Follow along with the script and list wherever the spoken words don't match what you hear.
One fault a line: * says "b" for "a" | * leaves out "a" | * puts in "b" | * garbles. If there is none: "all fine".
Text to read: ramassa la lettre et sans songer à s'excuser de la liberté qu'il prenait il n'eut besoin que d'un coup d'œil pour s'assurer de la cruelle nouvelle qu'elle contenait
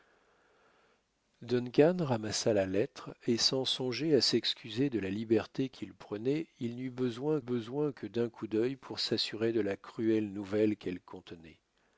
* puts in "besoin"